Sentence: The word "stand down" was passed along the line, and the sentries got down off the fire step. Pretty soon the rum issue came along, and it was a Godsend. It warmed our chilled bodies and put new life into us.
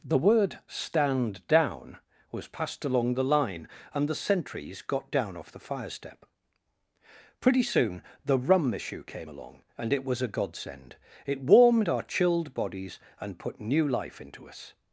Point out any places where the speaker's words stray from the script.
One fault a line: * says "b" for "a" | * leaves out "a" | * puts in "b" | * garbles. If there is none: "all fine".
all fine